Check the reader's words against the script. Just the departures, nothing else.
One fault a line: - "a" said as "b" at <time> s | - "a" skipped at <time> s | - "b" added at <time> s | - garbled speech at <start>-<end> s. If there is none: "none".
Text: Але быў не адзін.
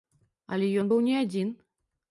- "ён" added at 0.8 s